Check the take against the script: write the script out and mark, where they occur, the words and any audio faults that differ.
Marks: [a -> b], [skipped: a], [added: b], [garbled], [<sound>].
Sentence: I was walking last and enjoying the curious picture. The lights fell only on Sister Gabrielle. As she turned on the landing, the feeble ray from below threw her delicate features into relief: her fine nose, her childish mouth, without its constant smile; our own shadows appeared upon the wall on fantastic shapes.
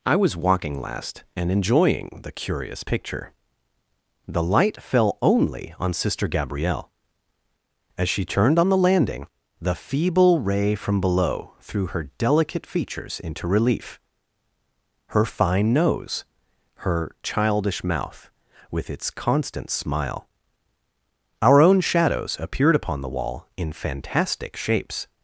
I was walking last and enjoying the curious picture. The [lights -> light] fell only on Sister Gabrielle. As she turned on the landing, the feeble ray from below threw her delicate features into relief: her fine nose, her childish mouth, [without -> with] its constant smile; our own shadows appeared upon the wall [on -> in] fantastic shapes.